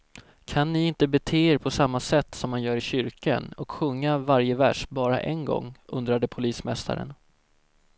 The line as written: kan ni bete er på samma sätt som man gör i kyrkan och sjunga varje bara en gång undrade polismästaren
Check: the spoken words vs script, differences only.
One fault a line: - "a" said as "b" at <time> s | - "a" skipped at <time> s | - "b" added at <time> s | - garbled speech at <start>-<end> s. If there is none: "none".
- "inte" added at 0.9 s
- "vers" added at 4.5 s